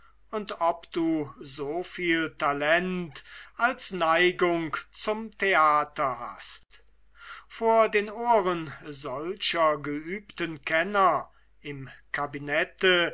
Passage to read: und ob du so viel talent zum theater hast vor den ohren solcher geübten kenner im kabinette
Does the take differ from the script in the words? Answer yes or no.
yes